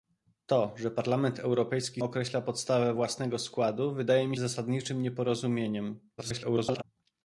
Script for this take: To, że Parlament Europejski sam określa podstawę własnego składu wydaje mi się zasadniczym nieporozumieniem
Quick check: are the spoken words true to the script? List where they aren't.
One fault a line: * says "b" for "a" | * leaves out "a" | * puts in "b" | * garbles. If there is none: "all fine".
* leaves out "sam"
* leaves out "się"
* garbles